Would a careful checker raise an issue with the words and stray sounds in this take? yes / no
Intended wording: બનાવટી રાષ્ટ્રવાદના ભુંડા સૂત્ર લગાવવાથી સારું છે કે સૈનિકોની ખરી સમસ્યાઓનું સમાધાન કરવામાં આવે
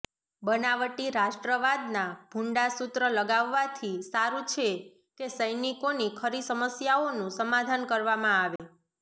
yes